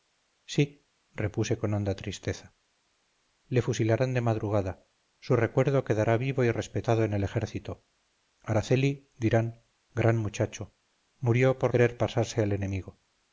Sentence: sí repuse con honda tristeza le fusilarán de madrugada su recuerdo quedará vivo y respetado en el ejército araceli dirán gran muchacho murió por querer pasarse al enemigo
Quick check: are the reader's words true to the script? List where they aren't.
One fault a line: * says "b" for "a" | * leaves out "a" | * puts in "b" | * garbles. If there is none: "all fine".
all fine